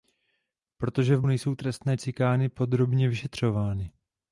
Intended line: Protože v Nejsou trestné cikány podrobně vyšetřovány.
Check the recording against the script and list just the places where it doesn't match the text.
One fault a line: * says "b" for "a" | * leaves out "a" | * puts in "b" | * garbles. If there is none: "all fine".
all fine